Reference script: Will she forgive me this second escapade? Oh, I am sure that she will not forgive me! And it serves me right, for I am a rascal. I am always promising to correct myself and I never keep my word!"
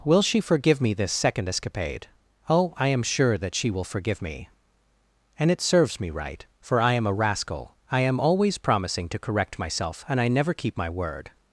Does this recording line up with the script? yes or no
no